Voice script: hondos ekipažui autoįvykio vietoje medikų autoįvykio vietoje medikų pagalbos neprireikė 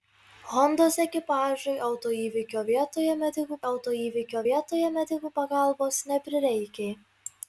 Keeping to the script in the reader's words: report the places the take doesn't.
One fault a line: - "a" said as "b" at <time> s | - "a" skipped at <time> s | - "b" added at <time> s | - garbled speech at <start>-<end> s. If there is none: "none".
none